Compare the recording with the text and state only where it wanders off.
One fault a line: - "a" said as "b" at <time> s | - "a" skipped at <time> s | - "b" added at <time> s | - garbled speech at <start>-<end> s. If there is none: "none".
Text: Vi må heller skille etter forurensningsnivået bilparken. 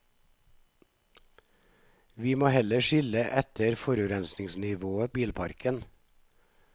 none